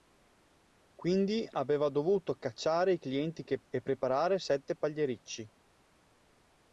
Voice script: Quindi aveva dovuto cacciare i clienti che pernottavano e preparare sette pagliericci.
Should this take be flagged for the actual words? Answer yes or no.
yes